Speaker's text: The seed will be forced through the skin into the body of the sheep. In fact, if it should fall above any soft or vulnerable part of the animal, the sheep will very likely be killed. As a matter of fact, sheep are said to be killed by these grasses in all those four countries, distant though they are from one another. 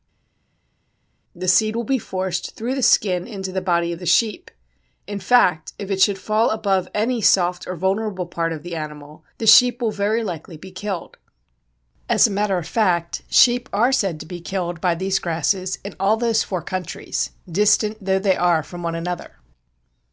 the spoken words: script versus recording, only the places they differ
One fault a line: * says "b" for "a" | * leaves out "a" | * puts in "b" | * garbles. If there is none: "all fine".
all fine